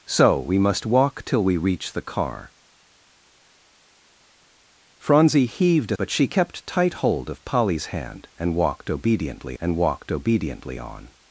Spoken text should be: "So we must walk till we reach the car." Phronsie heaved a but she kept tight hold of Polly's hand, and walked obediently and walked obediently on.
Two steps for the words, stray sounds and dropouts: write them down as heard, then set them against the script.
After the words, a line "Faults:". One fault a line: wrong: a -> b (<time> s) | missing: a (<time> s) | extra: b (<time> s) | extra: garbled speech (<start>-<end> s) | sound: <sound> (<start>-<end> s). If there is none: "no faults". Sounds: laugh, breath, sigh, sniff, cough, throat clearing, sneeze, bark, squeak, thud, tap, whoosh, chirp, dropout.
"So we must walk till we reach the car." Phronsie heaved a but she kept tight hold of Polly's hand, and walked obediently and walked obediently on.
Faults:
no faults